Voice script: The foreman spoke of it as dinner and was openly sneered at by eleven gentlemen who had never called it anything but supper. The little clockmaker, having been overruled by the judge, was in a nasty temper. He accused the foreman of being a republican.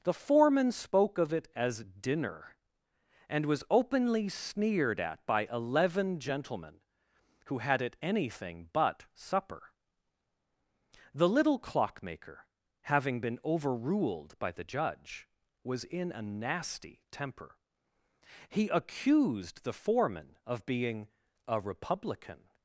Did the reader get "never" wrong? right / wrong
wrong